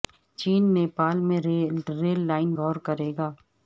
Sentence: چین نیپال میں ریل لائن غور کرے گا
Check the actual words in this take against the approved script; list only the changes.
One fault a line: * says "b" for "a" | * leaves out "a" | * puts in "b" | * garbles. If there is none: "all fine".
all fine